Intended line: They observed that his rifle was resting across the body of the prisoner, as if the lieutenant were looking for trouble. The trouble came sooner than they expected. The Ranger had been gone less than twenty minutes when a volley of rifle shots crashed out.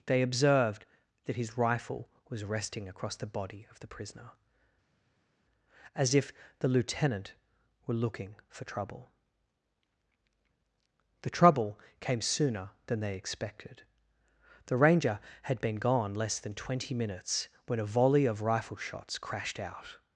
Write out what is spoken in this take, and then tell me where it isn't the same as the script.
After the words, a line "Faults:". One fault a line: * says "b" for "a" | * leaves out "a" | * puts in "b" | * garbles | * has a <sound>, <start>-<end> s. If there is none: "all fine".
They observed that his rifle was resting across the body of the prisoner, as if the lieutenant were looking for trouble. The trouble came sooner than they expected. The Ranger had been gone less than twenty minutes when a volley of rifle shots crashed out.
Faults:
all fine